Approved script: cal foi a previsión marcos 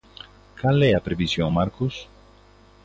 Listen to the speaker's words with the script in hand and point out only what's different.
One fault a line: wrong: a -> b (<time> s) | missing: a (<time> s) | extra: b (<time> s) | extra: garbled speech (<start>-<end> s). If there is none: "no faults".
wrong: foi -> é (0.8 s)